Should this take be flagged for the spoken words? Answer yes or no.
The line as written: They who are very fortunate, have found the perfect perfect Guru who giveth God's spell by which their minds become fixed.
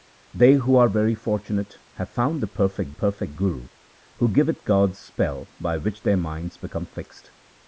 no